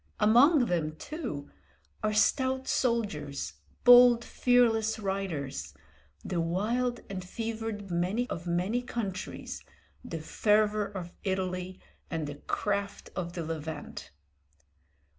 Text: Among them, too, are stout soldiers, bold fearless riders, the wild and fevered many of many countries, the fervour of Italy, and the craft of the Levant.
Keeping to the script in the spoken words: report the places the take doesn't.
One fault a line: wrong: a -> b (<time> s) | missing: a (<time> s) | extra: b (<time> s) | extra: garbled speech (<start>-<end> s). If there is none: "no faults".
no faults